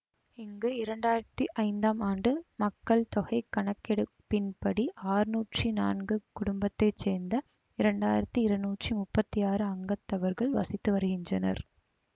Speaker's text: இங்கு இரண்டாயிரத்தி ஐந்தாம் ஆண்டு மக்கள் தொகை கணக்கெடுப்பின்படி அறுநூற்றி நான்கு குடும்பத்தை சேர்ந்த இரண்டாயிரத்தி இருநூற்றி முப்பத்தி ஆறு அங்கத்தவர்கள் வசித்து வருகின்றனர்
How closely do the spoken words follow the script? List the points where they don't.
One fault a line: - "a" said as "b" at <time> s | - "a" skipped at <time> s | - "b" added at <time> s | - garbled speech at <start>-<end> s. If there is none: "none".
none